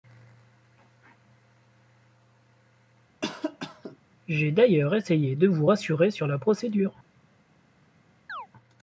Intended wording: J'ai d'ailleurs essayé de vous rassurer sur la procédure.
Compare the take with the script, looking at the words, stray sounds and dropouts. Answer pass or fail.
fail